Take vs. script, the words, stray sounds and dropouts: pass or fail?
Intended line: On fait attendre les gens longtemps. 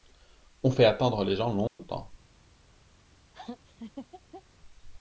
fail